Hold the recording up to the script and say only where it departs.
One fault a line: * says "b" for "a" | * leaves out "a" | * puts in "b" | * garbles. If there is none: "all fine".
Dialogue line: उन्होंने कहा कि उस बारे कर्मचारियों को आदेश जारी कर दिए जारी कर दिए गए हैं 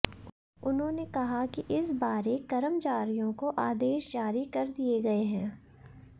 * says "इस" for "उस"
* leaves out "जारी कर दिए"